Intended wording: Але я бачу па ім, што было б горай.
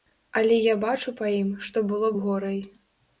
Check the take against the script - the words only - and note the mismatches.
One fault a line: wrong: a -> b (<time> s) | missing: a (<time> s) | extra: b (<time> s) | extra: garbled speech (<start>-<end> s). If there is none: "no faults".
no faults